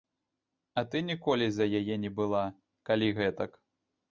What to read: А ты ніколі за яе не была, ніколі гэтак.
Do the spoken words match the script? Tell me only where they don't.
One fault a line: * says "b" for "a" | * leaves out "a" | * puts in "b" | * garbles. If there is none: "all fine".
* says "калі" for "ніколі"